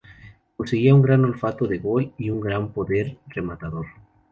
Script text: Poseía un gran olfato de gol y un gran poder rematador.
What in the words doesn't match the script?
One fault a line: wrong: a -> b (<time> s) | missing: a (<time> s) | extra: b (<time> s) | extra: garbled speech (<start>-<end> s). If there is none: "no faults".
no faults